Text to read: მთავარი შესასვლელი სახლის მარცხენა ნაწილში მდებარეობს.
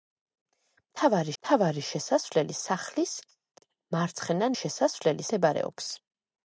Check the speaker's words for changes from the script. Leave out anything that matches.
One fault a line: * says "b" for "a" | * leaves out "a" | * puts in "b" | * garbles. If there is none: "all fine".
* puts in "მთავარი"
* says "შესასვლელი" for "ნაწილში"